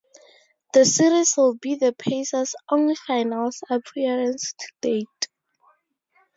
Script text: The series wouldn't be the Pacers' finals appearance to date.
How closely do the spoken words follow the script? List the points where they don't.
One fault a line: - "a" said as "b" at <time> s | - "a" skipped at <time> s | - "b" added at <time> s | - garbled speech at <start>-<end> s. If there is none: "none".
- "wouldn't" said as "would" at 1.4 s
- "only" added at 2.7 s